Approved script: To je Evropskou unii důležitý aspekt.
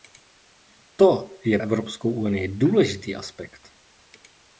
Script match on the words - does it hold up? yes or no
yes